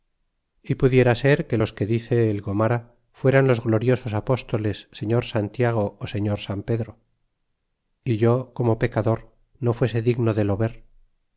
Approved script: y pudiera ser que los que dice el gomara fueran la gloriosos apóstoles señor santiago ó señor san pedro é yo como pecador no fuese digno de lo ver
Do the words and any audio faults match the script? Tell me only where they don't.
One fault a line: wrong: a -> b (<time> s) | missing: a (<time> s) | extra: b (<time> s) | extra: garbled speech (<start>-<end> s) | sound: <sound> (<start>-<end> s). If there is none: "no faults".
wrong: la -> los (3.5 s)